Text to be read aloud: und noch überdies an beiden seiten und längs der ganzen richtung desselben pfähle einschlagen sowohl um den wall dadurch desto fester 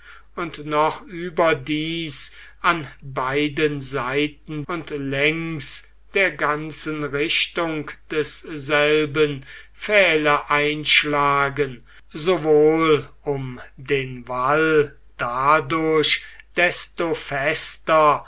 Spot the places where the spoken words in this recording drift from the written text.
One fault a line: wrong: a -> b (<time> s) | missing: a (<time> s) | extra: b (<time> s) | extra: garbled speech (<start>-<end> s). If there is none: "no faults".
no faults